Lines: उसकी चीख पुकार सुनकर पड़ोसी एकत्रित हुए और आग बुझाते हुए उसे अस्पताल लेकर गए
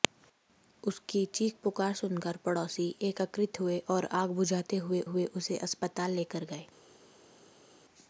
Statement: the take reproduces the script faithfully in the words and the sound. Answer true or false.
false